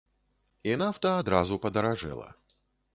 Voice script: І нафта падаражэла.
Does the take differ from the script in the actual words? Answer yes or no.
yes